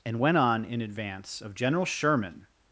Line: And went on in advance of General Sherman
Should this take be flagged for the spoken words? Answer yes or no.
no